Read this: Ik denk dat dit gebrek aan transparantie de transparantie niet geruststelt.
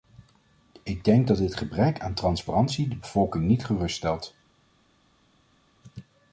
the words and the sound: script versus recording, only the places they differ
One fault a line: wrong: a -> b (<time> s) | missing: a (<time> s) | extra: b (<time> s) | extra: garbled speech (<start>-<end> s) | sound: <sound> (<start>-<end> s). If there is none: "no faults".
wrong: transparantie -> bevolking (3.0 s)